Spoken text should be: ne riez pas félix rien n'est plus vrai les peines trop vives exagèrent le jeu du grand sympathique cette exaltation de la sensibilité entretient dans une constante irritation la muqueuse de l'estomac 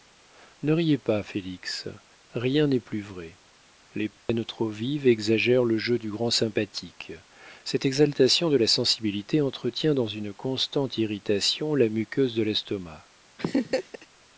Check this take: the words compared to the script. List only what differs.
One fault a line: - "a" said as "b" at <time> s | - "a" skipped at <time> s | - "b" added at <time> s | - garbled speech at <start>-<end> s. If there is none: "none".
none